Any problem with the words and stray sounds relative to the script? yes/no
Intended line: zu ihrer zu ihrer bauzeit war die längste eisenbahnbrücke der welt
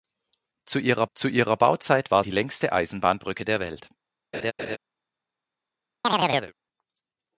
yes